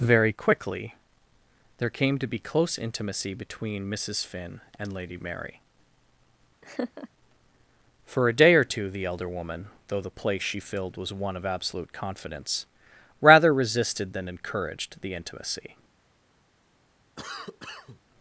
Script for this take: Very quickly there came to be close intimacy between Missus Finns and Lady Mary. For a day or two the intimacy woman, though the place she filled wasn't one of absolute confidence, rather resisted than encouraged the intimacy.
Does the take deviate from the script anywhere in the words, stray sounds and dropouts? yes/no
yes